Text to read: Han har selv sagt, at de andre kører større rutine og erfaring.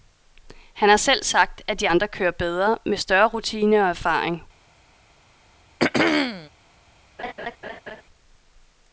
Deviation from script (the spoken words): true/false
true